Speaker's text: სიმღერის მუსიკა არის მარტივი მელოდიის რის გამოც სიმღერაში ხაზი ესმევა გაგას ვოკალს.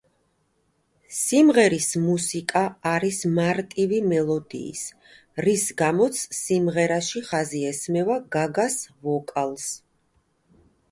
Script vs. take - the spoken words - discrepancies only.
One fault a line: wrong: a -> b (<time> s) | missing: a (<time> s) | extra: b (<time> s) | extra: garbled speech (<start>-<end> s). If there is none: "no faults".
no faults